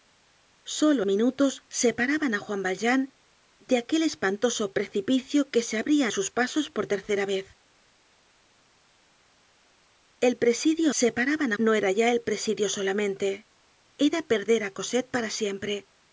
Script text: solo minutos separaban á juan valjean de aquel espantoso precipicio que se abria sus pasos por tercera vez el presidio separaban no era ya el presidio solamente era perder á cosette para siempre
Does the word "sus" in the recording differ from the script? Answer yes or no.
no